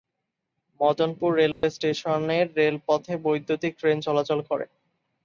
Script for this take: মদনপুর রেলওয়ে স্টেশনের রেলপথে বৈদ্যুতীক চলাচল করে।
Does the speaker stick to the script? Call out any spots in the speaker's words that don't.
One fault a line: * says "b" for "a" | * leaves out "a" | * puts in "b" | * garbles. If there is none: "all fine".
* puts in "ট্রেন"